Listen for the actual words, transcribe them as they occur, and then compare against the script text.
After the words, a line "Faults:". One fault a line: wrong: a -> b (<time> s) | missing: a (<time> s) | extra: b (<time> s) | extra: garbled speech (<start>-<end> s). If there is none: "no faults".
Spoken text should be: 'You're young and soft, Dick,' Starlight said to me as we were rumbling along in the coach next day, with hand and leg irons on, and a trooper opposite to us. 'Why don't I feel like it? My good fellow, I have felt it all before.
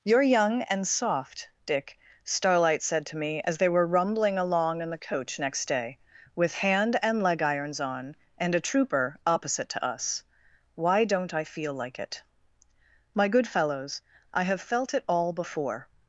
'You're young and soft, Dick,' Starlight said to me as they were rumbling along in the coach next day, with hand and leg irons on, and a trooper opposite to us. 'Why don't I feel like it? My good fellows, I have felt it all before.
Faults:
wrong: we -> they (3.6 s)
wrong: fellow -> fellows (13.5 s)